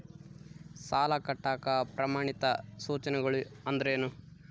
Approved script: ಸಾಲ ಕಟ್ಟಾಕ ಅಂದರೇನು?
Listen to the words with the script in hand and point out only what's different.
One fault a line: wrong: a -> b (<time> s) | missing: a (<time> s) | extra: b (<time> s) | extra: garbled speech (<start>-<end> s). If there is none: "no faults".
extra: ಪ್ರಮಾಣಿತ ಸೂಚನೆಗಳು (1.9 s)